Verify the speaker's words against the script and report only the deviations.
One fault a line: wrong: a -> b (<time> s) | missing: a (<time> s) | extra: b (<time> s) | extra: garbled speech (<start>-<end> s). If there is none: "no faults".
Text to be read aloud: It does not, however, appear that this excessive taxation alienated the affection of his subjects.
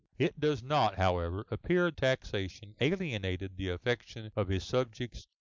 missing: that this excessive (1.9 s)